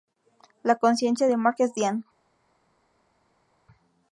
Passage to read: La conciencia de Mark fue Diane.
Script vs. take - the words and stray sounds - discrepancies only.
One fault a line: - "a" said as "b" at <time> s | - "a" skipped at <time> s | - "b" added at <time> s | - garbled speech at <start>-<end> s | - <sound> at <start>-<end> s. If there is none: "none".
- "fue" said as "es" at 1.6 s